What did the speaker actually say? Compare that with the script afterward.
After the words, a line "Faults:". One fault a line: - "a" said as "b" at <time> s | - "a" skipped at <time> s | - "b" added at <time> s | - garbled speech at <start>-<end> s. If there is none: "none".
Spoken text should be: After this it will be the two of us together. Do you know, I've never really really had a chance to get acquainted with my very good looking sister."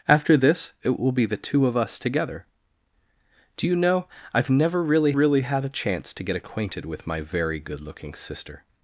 After this it will be the two of us together. Do you know, I've never really really had a chance to get acquainted with my very good looking sister."
Faults:
none